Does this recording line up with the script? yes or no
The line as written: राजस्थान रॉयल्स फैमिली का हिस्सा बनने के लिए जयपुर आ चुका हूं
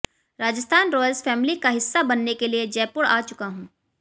yes